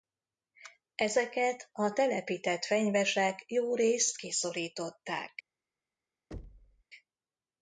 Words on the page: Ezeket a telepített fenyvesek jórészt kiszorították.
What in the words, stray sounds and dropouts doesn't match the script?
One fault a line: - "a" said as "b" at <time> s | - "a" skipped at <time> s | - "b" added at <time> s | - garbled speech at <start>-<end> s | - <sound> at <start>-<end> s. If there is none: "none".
- thud at 6.3-6.8 s